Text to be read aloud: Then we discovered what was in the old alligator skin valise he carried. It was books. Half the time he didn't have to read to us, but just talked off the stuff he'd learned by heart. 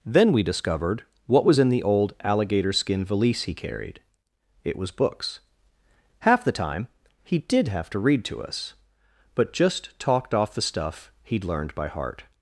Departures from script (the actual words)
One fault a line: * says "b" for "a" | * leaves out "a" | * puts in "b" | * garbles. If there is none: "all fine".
* says "did" for "didn't"